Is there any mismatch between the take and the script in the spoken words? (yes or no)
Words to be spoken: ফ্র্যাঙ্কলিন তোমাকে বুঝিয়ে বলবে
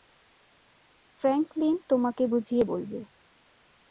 no